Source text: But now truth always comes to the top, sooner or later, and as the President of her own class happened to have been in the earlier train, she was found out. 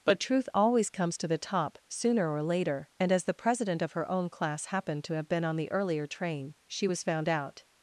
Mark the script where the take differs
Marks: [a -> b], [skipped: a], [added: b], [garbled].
But [skipped: now] truth always comes to the top, sooner or later, and as the President of her own class happened to have been [in -> on] the earlier train, she was found out.